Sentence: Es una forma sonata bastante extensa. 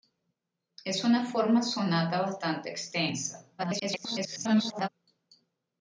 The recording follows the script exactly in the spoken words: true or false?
false